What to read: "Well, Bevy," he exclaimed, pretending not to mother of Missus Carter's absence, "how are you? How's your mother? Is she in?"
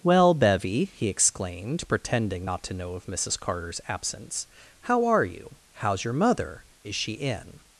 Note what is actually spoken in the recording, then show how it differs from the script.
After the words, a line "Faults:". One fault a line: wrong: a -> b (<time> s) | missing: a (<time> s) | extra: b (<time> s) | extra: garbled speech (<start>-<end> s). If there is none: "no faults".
"Well, Bevy," he exclaimed, pretending not to know of Missus Carter's absence, "how are you? How's your mother? Is she in?"
Faults:
wrong: mother -> know (2.7 s)